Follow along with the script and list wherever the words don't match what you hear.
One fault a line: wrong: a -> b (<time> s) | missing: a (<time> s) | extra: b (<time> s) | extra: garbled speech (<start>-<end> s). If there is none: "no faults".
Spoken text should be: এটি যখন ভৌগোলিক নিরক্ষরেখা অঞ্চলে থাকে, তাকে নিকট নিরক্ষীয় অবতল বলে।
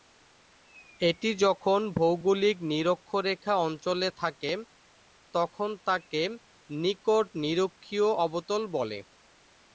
extra: তখন (5.3 s)